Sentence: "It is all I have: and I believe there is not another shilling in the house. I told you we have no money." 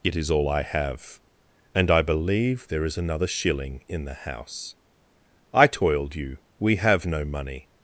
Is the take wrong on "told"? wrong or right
wrong